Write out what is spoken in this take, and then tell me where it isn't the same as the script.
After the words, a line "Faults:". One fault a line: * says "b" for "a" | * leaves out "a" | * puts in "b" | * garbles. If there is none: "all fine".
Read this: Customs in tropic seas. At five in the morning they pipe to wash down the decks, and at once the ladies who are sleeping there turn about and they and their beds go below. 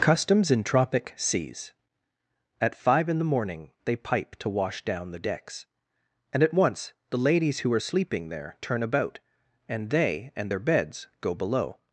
Customs in tropic seas. At five in the morning they pipe to wash down the decks, and at once the ladies who are sleeping there turn about and they and their beds go below.
Faults:
all fine